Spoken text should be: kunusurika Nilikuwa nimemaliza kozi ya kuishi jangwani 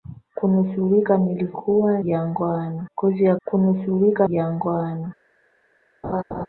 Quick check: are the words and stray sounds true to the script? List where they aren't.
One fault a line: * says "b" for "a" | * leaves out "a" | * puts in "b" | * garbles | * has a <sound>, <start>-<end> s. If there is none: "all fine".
* says "jangwani" for "nimemaliza"
* says "kunusurika" for "kuishi"
* has a laugh, 6.0-6.5 s